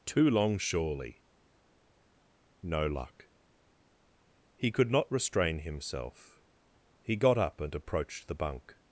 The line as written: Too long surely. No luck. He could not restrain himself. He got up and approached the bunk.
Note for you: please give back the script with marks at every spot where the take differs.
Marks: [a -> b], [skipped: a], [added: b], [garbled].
Too long surely. No luck. He could not restrain himself. He got up and approached the bunk.